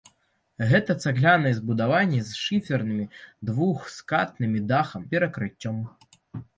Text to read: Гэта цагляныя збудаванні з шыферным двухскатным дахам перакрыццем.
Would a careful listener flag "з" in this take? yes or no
no